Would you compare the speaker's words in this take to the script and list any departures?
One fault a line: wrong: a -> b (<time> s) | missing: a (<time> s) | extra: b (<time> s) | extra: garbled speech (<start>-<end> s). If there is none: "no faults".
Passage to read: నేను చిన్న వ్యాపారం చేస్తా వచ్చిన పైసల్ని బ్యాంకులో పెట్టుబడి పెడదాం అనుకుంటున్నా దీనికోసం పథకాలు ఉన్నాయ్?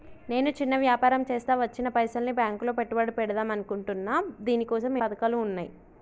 no faults